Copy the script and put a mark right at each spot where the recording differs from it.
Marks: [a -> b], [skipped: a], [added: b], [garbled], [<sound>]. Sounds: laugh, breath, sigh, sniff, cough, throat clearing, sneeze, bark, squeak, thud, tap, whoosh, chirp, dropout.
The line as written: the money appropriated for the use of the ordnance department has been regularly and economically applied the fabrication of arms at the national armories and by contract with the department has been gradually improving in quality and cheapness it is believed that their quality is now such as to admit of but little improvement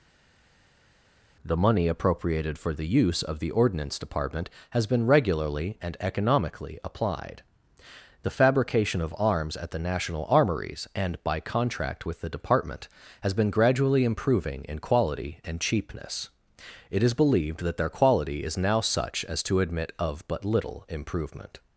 the money appropriated for the use of the ordnance department has been regularly and economically applied the fabrication of arms at the national armories and by contract with the department has been gradually improving in quality and cheapness it is believed that their quality is now such as to admit of but little improvement